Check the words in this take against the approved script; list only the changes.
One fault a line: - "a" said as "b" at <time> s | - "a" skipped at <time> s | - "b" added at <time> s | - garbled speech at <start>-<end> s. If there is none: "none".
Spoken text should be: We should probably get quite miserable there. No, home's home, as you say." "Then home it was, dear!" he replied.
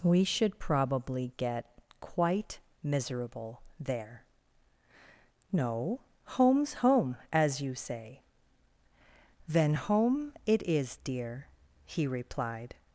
- "was" said as "is" at 10.6 s